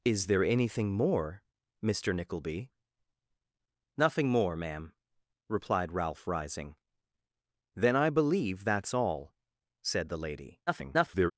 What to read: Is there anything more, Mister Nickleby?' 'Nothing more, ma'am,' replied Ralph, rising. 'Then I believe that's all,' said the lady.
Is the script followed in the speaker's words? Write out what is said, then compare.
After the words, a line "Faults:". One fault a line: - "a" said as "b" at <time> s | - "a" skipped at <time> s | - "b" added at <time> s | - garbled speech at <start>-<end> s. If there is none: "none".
Is there anything more, Mister Nickleby?' 'Nothing more, ma'am,' replied Ralph, rising. 'Then I believe that's all,' said the lady. [garbled]
Faults:
- garbled speech at 10.7-11.3 s